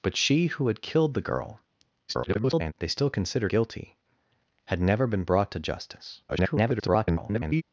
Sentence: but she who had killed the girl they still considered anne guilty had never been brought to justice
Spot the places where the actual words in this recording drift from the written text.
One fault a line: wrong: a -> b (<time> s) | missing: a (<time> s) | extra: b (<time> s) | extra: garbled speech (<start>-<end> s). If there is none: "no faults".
extra: garbled speech (2.1-2.7 s)
missing: anne (3.5 s)
extra: garbled speech (6.3-7.6 s)